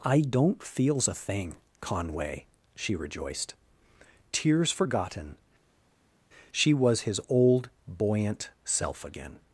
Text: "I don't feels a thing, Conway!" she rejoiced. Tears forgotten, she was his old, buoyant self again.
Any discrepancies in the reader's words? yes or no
no